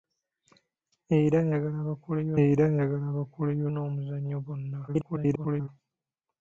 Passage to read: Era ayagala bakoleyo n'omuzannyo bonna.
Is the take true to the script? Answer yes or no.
no